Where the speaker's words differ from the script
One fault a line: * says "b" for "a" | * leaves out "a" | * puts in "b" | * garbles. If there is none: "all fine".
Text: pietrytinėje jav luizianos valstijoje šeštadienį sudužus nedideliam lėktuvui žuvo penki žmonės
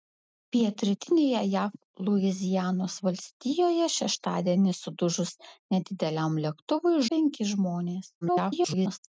* leaves out "žuvo"
* garbles